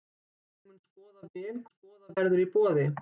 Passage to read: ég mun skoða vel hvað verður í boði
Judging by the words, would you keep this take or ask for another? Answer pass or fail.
fail